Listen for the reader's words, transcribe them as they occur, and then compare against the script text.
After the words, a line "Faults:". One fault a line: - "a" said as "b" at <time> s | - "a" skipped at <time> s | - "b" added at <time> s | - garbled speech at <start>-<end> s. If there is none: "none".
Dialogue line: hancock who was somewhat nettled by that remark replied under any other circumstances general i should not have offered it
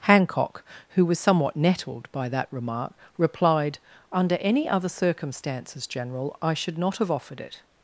hancock who was somewhat nettled by that remark replied under any other circumstances general i should not have offered it
Faults:
none